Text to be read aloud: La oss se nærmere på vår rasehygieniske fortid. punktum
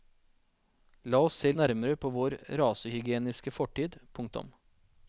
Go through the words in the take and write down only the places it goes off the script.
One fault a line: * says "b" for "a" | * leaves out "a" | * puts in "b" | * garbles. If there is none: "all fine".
all fine